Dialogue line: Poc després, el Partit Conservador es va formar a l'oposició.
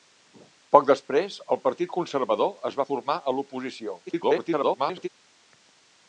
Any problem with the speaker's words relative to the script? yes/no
yes